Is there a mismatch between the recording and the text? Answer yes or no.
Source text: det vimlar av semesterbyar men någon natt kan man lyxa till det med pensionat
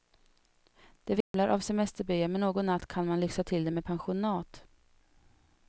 no